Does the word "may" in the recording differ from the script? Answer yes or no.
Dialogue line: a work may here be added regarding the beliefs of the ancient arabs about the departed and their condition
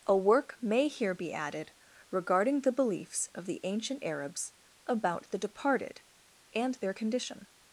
no